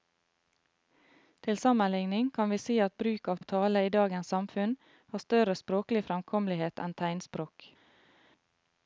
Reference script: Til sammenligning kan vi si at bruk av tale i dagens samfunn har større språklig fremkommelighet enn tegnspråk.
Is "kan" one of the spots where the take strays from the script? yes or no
no